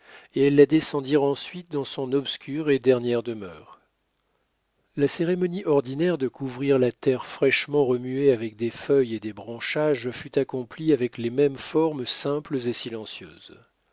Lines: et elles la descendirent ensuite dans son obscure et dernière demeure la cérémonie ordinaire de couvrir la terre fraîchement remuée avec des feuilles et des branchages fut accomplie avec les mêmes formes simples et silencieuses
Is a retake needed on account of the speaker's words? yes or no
no